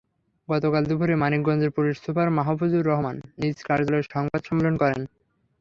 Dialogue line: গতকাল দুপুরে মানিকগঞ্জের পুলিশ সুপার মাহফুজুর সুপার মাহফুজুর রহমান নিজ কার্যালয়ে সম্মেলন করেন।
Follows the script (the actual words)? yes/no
no